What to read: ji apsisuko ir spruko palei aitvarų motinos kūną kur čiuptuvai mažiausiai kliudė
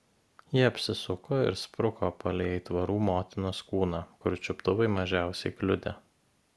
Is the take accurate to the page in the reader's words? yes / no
yes